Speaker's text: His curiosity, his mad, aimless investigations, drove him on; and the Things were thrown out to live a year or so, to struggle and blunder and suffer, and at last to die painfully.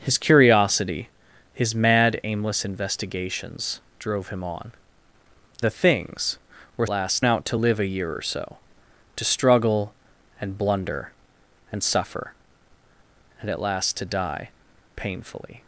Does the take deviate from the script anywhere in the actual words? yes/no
yes